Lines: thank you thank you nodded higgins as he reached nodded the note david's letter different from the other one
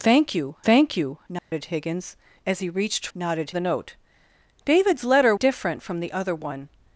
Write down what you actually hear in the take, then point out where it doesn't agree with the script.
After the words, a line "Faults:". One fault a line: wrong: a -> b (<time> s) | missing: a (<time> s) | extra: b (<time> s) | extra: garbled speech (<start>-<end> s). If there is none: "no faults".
thank you thank you nodded higgins as he reached nodded the note david's letter different from the other one
Faults:
no faults